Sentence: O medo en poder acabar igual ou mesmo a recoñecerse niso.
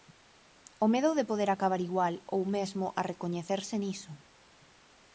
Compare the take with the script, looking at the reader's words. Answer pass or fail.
fail